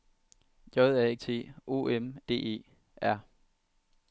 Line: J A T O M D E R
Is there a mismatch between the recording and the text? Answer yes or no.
no